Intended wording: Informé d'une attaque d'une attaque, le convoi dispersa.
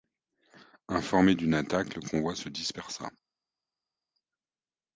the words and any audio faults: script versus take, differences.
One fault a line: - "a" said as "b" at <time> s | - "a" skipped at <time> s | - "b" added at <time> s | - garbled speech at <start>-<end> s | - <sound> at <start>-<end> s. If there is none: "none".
- "d'une attaque" skipped at 1.9 s
- "se" added at 2.4 s